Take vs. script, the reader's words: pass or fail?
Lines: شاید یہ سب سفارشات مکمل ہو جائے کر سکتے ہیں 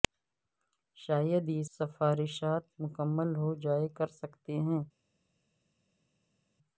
fail